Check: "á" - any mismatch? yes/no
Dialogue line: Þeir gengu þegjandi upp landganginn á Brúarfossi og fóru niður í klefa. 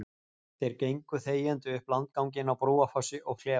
no